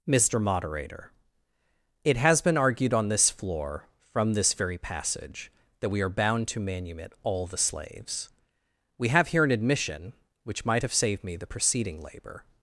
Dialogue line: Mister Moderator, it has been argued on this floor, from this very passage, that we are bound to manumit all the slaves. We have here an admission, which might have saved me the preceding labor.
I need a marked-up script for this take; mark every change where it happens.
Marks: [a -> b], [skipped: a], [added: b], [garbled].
Mister Moderator, it has been argued on this floor, from this very passage, that we are bound to manumit all the slaves. We have here an admission, which might have saved me the preceding labor.